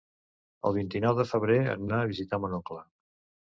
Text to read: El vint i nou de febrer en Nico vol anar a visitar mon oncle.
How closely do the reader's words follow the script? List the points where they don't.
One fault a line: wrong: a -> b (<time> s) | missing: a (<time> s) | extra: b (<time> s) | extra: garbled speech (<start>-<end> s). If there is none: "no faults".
missing: Nico vol (1.9 s)